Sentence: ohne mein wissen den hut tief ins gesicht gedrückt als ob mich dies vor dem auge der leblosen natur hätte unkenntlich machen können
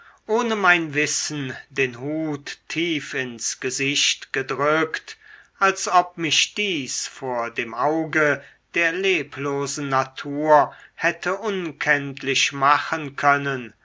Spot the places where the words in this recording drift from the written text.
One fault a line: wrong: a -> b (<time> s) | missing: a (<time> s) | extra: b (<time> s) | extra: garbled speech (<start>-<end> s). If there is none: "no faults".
no faults